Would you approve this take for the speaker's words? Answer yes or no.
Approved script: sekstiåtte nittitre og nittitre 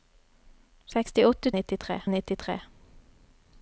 yes